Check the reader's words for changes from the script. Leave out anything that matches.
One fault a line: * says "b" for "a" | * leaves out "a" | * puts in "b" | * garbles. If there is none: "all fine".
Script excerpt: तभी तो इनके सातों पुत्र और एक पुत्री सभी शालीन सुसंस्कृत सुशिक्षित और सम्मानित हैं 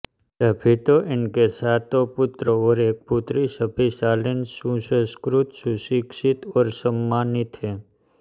all fine